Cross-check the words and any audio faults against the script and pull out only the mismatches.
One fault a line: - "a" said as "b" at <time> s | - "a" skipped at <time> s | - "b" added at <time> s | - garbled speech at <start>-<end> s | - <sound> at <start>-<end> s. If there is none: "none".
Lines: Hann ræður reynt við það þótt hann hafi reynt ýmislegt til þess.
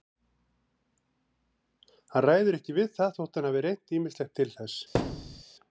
- "reynt" said as "ekki" at 2.6 s
- thud at 4.9-5.4 s